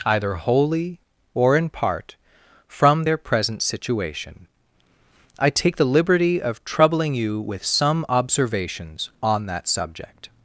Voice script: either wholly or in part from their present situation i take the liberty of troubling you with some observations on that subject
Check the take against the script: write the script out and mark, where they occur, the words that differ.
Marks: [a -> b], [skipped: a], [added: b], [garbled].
either wholly or in part from their present situation i take the liberty of troubling you with some observations on that subject